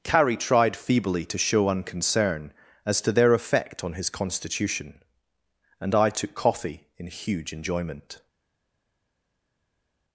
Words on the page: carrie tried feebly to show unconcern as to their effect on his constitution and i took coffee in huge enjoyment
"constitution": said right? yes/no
yes